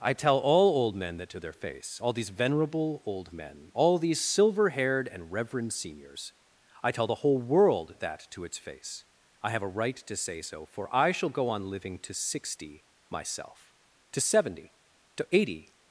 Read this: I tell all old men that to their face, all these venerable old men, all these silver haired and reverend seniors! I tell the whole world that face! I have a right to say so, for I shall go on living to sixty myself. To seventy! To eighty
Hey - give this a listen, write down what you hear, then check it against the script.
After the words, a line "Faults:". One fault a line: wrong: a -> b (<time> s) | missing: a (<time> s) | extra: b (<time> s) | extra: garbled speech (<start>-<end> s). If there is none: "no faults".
I tell all old men that to their face, all these venerable old men, all these silver haired and reverend seniors! I tell the whole world that to its face! I have a right to say so, for I shall go on living to sixty myself. To seventy! To eighty
Faults:
extra: to its (8.3 s)